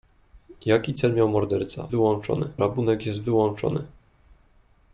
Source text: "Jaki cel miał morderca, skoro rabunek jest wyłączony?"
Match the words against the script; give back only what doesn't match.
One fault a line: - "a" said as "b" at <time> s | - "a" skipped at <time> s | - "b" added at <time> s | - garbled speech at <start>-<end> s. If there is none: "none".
- "skoro" said as "wyłączony" at 1.9 s